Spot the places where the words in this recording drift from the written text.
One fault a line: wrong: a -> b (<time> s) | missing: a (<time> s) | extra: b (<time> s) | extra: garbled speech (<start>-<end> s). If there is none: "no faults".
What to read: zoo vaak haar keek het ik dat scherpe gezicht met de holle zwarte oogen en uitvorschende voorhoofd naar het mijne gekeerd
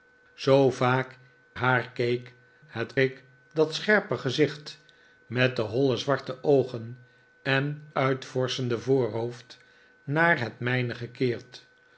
no faults